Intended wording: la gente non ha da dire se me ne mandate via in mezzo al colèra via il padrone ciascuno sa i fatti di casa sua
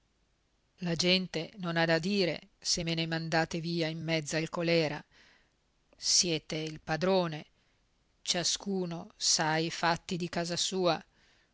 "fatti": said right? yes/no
yes